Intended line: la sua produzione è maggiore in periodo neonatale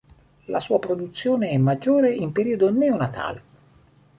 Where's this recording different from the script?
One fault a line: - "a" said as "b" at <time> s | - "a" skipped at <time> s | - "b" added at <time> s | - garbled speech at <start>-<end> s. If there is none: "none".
none